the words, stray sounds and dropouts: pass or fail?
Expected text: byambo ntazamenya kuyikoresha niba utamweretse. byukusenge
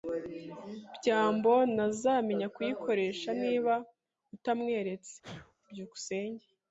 fail